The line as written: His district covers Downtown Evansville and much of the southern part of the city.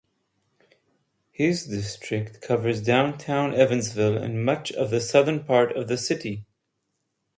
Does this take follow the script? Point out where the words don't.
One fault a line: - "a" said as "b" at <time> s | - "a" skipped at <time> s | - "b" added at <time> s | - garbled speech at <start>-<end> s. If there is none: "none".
none